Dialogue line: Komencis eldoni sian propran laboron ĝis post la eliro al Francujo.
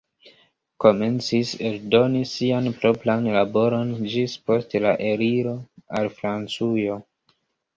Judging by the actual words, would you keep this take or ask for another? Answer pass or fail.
pass